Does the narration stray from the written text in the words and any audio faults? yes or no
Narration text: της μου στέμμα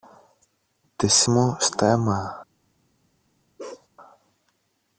yes